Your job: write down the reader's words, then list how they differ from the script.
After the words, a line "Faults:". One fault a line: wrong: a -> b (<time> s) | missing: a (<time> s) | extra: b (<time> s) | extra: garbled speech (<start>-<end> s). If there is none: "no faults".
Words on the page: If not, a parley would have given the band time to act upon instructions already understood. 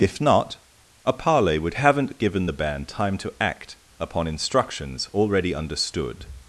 If not, a parley would haven't given the band time to act upon instructions already understood.
Faults:
wrong: have -> haven't (1.8 s)